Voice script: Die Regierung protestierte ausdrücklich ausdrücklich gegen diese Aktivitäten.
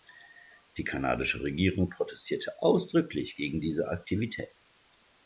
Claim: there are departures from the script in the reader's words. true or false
true